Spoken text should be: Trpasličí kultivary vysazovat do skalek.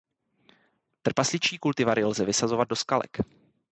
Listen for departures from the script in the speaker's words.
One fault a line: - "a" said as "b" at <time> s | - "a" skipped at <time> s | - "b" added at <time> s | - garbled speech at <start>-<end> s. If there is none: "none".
- "lze" added at 2.0 s